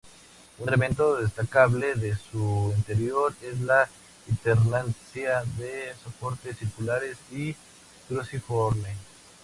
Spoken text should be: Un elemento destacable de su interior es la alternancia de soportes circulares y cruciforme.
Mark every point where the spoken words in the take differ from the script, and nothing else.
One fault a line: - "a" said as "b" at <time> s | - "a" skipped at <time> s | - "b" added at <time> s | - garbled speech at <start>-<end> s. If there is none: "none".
none